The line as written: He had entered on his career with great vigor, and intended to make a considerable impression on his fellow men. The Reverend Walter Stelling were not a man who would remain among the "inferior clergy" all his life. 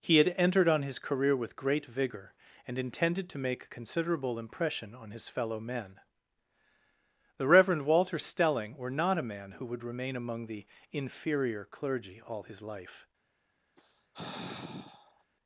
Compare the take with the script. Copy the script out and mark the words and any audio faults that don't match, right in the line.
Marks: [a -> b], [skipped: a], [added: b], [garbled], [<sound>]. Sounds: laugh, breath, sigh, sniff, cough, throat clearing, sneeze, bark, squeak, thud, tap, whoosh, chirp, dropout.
He had entered on his career with great vigor, and intended to make a considerable impression on his fellow men. The Reverend Walter Stelling were not a man who would remain among the "inferior clergy" all his life. [sigh]